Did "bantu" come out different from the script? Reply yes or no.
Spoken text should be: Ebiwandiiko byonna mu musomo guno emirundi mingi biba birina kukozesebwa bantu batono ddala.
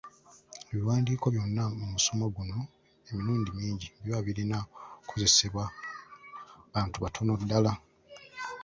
no